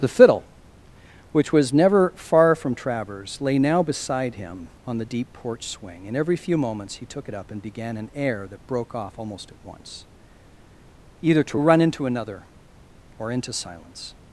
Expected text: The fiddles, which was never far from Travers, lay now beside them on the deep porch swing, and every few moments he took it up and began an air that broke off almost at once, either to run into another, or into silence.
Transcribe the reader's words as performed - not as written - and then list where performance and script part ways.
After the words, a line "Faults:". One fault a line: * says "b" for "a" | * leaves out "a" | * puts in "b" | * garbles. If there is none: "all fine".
The fiddle, which was never far from Travers, lay now beside him on the deep porch swing, and every few moments he took it up and began an air that broke off almost at once, either to run into another, or into silence.
Faults:
* says "fiddle" for "fiddles"
* says "him" for "them"